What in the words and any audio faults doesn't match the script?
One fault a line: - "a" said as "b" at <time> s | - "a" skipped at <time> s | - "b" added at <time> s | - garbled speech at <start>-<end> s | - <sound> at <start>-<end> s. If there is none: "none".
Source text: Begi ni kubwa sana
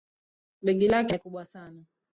- "lake" added at 0.9 s